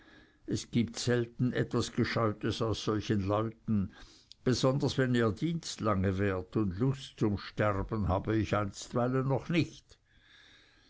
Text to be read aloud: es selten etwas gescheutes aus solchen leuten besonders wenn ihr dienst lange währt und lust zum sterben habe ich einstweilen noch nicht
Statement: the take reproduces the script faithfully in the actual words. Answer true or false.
false